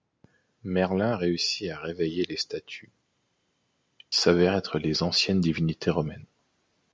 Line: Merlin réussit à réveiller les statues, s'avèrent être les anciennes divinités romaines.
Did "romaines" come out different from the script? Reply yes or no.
no